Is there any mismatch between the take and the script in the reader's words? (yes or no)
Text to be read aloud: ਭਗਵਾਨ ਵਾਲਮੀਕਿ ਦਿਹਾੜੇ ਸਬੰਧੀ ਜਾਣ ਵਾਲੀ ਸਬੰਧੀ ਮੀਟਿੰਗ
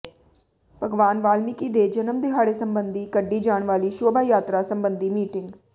yes